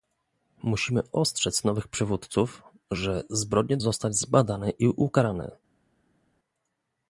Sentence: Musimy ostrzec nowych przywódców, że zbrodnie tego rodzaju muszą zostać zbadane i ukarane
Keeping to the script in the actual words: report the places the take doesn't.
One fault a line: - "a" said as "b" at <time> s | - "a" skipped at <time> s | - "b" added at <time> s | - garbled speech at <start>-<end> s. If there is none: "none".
- "tego rodzaju muszą" skipped at 3.8 s